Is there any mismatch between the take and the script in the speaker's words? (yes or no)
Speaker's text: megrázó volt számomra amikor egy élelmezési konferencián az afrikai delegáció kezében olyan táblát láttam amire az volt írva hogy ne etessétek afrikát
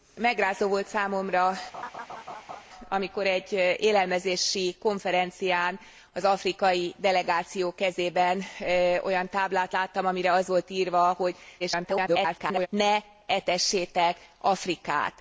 yes